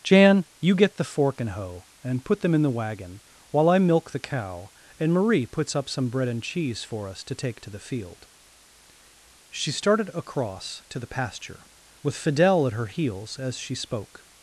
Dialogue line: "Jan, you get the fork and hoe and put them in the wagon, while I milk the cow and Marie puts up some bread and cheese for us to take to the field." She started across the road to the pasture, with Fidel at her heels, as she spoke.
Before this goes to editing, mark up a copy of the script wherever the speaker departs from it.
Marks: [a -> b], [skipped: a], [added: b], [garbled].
"Jan, you get the fork and hoe and put them in the wagon, while I milk the cow and Marie puts up some bread and cheese for us to take to the field." She started across [skipped: the road] to the pasture, with Fidel at her heels, as she spoke.